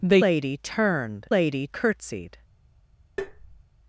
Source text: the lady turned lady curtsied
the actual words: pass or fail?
pass